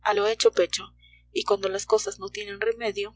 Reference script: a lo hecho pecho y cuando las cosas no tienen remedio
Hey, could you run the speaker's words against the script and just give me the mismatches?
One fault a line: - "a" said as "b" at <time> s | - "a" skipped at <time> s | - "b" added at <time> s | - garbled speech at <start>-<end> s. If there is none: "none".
none